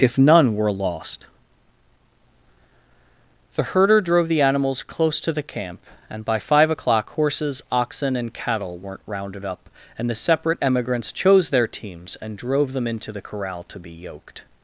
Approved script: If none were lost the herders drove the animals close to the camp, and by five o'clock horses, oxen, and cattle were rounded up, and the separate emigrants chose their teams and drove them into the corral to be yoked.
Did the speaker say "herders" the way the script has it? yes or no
no